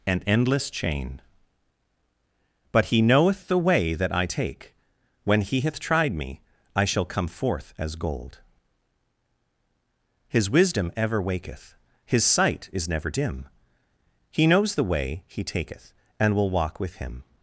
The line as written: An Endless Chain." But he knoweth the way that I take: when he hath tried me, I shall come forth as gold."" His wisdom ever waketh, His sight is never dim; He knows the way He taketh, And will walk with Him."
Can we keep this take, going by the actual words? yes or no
yes